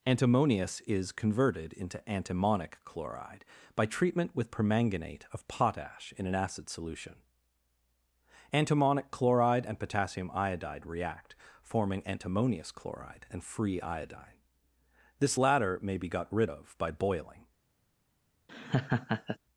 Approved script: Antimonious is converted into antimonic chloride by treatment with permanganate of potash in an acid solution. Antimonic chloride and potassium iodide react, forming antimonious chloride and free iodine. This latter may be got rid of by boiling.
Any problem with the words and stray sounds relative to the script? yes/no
yes